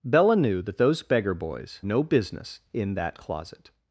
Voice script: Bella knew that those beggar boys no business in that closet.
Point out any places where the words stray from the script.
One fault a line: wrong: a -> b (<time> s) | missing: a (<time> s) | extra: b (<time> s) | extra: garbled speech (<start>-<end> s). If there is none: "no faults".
no faults